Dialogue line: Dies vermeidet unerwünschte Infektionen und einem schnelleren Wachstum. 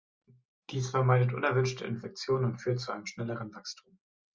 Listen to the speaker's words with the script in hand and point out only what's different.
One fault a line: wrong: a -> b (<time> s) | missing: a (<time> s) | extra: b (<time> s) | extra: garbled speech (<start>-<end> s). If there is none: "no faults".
extra: führt zu (2.6 s)